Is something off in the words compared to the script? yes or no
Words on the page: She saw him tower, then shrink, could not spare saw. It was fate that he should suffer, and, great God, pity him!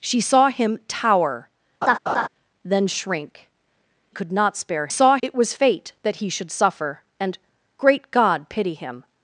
no